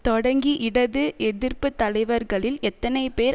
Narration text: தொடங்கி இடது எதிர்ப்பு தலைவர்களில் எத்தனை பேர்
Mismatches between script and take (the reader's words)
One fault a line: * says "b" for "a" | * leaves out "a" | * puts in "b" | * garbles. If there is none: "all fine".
all fine